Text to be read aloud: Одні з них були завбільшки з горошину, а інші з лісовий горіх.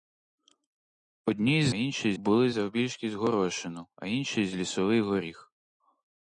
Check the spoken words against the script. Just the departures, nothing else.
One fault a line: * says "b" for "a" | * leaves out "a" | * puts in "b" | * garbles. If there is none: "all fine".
* says "інші" for "них"